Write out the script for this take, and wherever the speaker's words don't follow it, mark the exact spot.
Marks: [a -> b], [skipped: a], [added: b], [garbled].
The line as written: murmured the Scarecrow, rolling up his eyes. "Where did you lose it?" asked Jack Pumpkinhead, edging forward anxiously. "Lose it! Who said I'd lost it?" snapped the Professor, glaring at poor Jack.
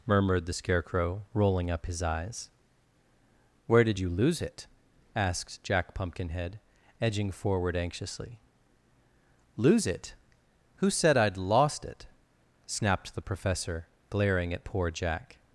murmured the Scarecrow, rolling up his eyes. "Where did you lose it?" asked Jack Pumpkinhead, edging forward anxiously. "Lose it! Who said I'd lost it?" snapped the Professor, glaring at poor Jack.